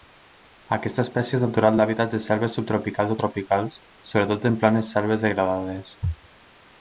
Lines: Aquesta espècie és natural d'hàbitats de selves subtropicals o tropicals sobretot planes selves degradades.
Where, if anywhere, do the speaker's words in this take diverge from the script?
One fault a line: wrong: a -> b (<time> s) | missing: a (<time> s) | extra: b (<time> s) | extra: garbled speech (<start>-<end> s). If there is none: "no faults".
extra: en (4.5 s)